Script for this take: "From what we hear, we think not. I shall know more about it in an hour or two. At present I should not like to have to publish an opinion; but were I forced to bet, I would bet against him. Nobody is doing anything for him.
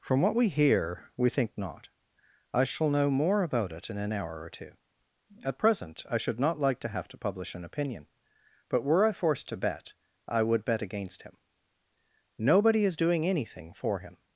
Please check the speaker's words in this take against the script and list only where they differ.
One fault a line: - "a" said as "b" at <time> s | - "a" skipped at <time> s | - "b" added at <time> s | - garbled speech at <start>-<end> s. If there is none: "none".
none